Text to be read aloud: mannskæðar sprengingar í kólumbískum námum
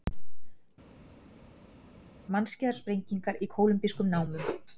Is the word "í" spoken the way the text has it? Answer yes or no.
yes